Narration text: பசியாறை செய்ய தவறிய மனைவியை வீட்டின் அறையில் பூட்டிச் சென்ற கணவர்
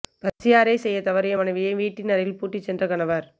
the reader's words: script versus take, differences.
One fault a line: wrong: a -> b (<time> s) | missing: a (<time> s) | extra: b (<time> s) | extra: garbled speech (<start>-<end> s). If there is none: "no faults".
no faults